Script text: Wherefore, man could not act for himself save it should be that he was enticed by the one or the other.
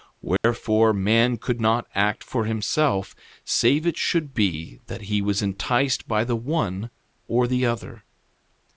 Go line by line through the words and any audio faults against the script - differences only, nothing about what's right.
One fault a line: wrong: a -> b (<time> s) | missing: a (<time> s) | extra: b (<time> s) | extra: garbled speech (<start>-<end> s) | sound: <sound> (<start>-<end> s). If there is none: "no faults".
sound: dropout (0.4-0.4 s)